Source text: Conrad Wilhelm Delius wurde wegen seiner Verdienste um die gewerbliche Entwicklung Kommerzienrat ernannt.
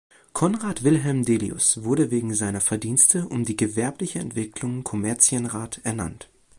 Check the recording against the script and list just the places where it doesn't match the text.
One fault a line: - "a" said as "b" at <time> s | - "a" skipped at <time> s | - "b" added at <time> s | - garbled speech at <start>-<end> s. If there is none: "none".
none